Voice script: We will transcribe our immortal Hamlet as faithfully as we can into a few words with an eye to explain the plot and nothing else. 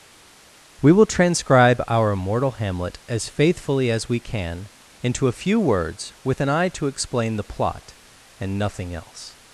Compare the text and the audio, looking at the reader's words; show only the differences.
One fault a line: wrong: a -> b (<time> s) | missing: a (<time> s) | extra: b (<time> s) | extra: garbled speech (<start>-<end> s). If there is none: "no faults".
no faults